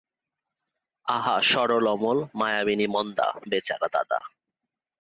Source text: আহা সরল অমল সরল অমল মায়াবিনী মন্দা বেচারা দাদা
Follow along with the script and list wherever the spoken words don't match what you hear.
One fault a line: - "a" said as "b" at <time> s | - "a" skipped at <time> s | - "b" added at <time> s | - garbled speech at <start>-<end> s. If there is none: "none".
- "সরল অমল" skipped at 2.2 s